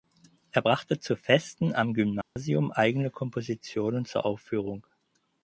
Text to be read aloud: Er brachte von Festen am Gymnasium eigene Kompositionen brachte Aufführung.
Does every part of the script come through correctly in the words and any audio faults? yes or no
no